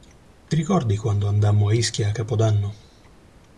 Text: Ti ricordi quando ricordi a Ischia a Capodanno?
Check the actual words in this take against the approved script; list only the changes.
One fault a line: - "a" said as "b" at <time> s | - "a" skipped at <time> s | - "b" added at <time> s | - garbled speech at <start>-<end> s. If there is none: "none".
- "ricordi" said as "andammo" at 1.3 s